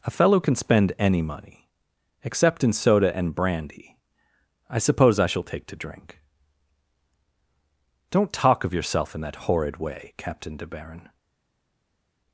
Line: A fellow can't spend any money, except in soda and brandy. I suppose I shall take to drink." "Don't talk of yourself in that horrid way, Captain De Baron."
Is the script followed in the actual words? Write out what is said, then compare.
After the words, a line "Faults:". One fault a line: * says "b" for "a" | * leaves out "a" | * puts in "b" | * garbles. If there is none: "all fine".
A fellow can spend any money, except in soda and brandy. I suppose I shall take to drink." "Don't talk of yourself in that horrid way, Captain De Baron."
Faults:
* says "can" for "can't"